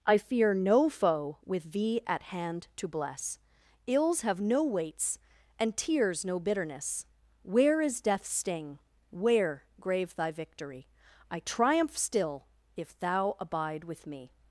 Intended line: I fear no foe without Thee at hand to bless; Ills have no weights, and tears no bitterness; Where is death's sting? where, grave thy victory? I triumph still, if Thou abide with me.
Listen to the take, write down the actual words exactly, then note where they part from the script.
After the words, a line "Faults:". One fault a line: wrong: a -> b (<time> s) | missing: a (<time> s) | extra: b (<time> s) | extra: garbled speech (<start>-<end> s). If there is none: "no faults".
I fear no foe with Thee at hand to bless; Ills have no weights, and tears no bitterness; Where is death's sting? where, grave thy victory? I triumph still, if Thou abide with me.
Faults:
wrong: without -> with (1.4 s)